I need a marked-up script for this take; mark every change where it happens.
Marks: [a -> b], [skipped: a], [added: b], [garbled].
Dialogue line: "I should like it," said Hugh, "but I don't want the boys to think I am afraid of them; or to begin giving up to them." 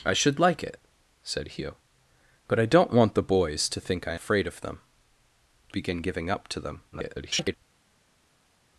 "I should like it," said Hugh, "but I don't want the boys to think I [skipped: am] afraid of them; [skipped: or to] begin giving up to them." [garbled]